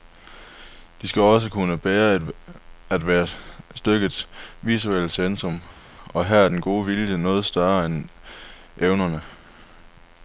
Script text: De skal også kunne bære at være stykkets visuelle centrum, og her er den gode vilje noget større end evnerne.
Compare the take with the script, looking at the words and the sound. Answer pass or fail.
pass